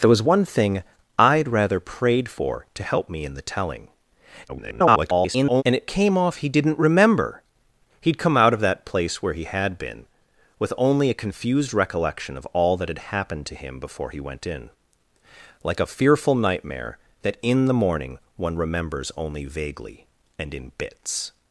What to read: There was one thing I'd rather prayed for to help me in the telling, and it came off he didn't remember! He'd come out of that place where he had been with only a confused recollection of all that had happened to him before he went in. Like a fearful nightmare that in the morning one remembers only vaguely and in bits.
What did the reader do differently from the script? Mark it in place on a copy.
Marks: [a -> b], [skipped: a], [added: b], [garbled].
There was one thing I'd rather prayed for to help me in the telling, [garbled] and it came off he didn't remember! He'd come out of that place where he had been with only a confused recollection of all that had happened to him before he went in. Like a fearful nightmare that in the morning one remembers only vaguely and in bits.